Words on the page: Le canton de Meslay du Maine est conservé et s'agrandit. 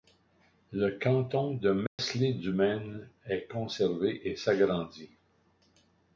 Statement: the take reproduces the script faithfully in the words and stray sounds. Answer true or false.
false